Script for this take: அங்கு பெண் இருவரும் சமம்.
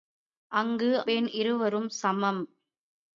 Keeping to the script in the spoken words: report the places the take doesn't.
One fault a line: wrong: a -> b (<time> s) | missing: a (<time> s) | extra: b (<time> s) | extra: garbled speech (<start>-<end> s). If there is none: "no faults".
no faults